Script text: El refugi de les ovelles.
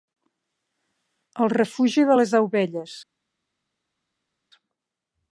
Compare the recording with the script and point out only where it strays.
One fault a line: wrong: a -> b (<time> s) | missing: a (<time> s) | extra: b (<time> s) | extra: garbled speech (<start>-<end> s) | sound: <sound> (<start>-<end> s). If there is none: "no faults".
no faults